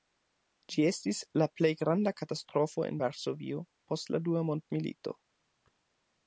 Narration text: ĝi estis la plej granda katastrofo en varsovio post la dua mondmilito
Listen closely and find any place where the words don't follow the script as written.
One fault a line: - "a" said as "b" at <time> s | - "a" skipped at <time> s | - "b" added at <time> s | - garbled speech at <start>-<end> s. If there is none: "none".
none